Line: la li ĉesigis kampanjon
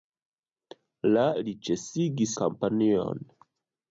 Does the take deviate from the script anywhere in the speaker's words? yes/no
no